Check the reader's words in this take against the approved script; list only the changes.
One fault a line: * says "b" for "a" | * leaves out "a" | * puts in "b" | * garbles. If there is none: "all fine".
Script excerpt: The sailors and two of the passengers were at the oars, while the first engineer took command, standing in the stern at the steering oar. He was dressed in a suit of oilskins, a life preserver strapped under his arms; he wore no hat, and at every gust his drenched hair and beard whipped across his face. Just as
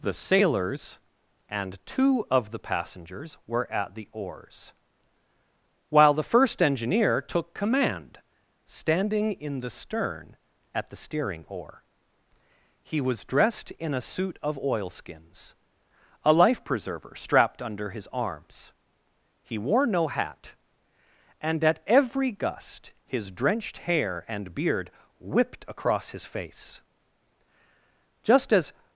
all fine